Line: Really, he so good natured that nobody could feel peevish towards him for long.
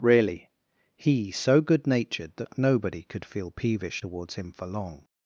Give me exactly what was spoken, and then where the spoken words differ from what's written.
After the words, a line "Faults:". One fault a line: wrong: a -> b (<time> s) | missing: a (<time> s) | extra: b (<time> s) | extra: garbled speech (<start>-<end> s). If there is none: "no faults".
Really, he so good natured that nobody could feel peevish towards him for long.
Faults:
no faults